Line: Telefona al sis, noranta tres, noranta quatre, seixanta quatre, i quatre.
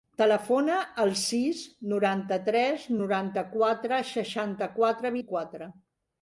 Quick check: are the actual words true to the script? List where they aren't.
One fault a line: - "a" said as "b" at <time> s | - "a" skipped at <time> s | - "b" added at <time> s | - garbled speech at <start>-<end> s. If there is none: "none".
none